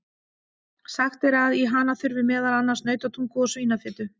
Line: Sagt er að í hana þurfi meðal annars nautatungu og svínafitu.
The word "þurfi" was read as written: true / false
true